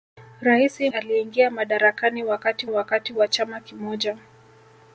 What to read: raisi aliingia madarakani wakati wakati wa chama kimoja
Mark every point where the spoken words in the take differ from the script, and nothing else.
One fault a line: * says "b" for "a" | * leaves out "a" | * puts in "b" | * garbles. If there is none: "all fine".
all fine